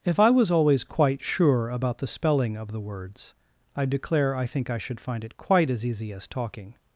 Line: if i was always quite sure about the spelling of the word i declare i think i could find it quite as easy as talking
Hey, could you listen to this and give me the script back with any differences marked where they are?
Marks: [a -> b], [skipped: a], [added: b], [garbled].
if i was always quite sure about the spelling of the [word -> words] i declare i think i [could -> should] find it quite as easy as talking